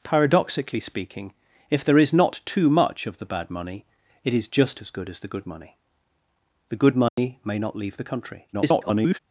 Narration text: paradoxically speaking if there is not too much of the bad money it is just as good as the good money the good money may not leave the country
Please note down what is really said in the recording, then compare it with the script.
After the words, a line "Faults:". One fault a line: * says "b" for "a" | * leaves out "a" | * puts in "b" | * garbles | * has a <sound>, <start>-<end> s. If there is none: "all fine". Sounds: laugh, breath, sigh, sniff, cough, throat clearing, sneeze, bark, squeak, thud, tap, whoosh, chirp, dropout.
paradoxically speaking if there is not too much of the bad money it is just as good as the good money the good money may not leave the country [garbled]
Faults:
* has a dropout, 7.1-7.2 s
* garbles